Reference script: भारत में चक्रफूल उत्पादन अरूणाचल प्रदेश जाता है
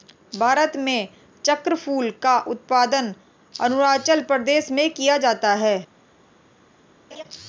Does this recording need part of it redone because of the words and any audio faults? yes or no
yes